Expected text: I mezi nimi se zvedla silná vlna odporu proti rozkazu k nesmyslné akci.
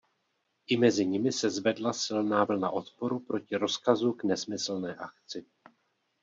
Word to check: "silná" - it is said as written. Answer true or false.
true